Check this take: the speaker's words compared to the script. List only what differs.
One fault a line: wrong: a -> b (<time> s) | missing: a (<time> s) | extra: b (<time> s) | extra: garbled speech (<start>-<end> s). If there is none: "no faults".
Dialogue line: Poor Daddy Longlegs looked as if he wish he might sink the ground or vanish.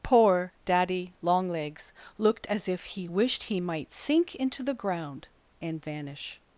wrong: wish -> wished (3.0 s)
extra: into (4.3 s)
wrong: or -> and (5.6 s)